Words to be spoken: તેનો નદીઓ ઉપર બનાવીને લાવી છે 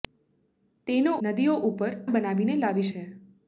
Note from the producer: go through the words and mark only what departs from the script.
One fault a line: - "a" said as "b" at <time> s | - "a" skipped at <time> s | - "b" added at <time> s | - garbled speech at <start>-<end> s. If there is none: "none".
none